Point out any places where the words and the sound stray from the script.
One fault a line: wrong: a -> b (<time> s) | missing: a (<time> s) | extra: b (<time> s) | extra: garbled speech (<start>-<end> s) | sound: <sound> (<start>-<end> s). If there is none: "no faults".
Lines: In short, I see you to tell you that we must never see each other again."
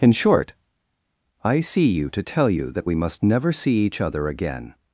no faults